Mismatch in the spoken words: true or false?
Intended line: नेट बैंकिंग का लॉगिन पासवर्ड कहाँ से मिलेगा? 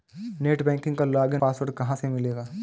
false